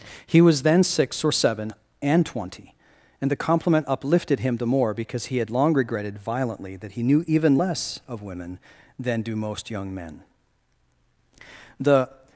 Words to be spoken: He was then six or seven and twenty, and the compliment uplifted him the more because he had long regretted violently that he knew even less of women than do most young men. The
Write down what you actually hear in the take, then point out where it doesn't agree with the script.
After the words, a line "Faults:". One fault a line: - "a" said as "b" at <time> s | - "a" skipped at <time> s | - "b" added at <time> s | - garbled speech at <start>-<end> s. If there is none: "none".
He was then six or seven and twenty, and the compliment uplifted him the more because he had long regretted violently that he knew even less of women than do most young men. The
Faults:
none